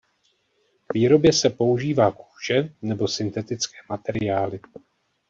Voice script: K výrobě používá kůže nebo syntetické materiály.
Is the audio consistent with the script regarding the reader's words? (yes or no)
no